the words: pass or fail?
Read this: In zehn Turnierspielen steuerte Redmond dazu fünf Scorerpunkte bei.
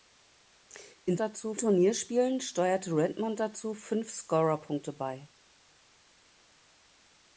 fail